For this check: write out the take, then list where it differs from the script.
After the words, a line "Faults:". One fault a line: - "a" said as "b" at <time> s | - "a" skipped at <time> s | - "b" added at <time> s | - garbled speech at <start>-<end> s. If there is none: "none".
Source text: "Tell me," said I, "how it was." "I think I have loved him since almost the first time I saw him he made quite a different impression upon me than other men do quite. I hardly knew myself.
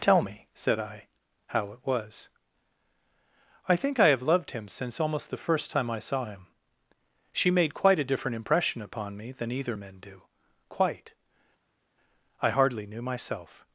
"Tell me," said I, "how it was." "I think I have loved him since almost the first time I saw him she made quite a different impression upon me than either men do quite. I hardly knew myself.
Faults:
- "he" said as "she" at 7.3 s
- "other" said as "either" at 9.5 s